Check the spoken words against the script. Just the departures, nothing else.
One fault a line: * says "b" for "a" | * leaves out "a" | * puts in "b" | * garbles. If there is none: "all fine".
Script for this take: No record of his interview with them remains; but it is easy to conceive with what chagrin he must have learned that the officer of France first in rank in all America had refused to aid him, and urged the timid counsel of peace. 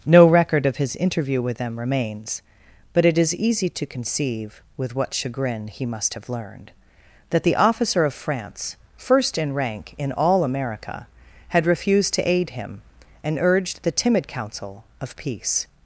all fine